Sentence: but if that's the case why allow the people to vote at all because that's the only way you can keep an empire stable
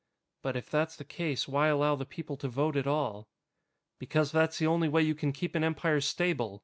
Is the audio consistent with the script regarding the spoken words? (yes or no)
yes